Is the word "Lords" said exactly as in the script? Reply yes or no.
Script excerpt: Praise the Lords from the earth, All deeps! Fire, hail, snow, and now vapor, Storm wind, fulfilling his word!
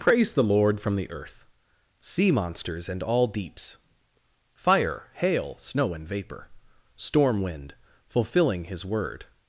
no